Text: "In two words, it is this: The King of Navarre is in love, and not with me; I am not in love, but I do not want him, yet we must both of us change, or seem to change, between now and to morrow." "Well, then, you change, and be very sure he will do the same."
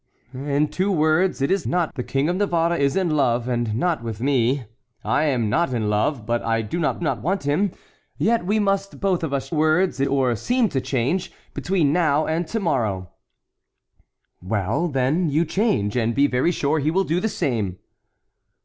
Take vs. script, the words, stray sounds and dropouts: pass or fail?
fail